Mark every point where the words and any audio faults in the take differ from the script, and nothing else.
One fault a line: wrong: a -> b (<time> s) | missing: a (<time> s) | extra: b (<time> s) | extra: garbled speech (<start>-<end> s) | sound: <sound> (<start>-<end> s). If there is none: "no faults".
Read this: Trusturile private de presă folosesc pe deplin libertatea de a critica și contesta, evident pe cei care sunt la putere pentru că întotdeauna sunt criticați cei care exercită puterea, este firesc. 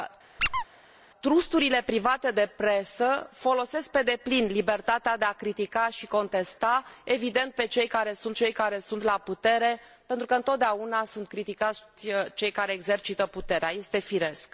sound: squeak (0.4-0.6 s)
extra: cei care sunt (8.3 s)